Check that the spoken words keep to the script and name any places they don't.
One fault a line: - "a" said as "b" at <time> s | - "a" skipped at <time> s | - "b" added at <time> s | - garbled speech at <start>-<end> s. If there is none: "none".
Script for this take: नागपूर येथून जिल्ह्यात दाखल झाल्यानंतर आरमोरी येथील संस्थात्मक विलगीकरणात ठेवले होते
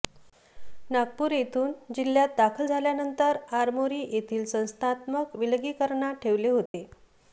none